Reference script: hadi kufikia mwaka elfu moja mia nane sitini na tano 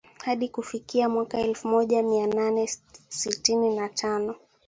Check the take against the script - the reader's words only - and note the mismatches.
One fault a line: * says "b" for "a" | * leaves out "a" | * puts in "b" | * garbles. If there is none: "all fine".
all fine